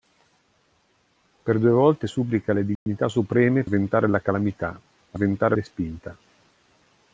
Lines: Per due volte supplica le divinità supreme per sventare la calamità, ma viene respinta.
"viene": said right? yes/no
no